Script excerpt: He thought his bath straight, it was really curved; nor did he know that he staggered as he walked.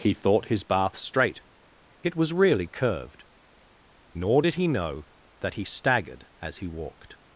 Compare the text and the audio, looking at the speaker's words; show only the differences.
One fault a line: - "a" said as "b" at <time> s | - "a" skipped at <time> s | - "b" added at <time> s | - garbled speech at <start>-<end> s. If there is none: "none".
none